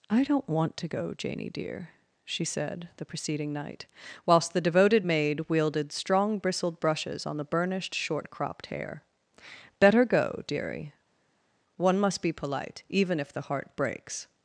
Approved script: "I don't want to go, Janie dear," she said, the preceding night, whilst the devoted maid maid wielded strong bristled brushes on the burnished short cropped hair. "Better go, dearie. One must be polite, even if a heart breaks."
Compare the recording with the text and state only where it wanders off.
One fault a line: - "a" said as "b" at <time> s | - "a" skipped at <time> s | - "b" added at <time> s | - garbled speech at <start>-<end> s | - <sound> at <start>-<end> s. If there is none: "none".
- "maid" skipped at 5.4 s
- "a" said as "the" at 13.3 s